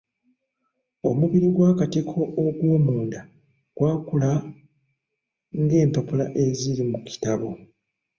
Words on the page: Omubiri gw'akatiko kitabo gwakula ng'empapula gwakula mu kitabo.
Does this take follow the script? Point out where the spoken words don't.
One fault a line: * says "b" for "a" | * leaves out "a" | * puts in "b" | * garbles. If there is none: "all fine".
* says "ogw'omunda" for "kitabo"
* says "eziri" for "gwakula"